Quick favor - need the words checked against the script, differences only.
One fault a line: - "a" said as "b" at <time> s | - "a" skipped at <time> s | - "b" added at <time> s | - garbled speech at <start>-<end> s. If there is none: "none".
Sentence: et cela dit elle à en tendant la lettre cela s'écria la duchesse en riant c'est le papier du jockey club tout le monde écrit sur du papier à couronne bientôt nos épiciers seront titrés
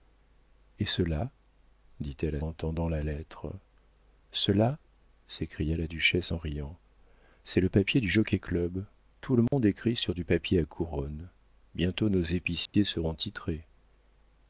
none